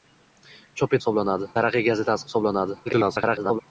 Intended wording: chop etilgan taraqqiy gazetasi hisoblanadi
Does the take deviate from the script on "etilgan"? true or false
true